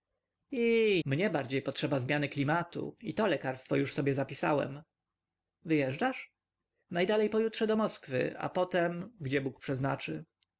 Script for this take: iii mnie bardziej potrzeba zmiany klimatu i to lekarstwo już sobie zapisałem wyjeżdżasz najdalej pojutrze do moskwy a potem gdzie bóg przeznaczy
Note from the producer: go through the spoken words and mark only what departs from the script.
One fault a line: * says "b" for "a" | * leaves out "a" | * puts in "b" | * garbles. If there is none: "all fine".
all fine